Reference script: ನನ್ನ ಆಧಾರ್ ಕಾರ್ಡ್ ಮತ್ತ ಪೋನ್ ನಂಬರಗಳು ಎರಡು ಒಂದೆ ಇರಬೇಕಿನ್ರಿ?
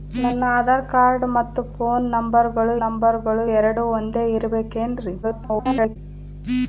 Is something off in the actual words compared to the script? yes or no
yes